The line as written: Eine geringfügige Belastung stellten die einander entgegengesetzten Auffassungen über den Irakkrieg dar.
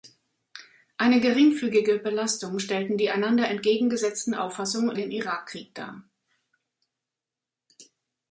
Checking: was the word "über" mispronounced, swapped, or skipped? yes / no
yes